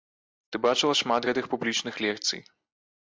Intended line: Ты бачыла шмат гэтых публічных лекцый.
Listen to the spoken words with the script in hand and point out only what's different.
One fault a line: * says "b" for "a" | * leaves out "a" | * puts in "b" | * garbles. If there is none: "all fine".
all fine